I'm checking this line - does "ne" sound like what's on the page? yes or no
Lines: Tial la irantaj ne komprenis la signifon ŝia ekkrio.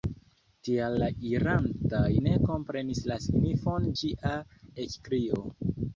yes